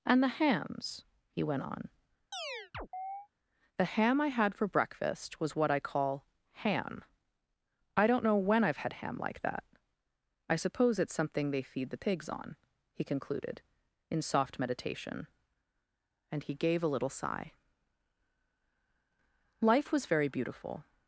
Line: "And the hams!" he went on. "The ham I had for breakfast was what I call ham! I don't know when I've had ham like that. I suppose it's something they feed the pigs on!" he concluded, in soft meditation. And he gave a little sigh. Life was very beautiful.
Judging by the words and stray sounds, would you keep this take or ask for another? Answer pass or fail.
fail